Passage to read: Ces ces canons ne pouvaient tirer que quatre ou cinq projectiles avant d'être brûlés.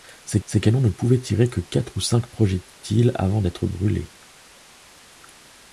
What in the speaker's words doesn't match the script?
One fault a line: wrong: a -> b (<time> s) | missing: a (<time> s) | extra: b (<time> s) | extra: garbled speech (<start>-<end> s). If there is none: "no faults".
no faults